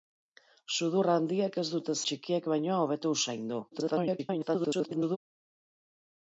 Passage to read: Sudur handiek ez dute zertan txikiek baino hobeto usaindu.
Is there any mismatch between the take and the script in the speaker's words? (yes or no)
yes